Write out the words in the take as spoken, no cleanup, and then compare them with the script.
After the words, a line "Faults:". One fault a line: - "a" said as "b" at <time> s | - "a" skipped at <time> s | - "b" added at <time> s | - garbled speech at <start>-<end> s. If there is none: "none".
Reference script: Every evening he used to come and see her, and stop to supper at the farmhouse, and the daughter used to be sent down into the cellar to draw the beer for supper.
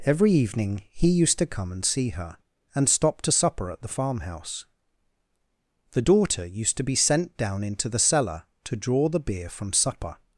Every evening he used to come and see her, and stop to supper at the farmhouse, the daughter used to be sent down into the cellar to draw the beer from supper.
Faults:
- "and" skipped at 4.7 s
- "for" said as "from" at 9.5 s